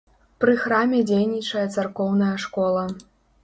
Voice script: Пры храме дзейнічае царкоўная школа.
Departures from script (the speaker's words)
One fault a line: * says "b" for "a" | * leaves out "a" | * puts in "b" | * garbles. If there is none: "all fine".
all fine